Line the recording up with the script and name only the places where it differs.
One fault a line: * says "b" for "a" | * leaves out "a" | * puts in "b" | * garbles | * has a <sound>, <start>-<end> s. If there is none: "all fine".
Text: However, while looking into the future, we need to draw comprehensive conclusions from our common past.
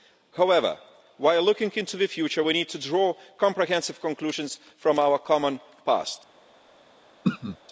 * has a throat clearing, 7.2-7.6 s